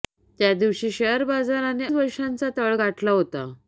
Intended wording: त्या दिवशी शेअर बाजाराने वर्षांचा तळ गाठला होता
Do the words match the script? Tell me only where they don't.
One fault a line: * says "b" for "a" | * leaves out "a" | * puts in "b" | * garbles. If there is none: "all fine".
all fine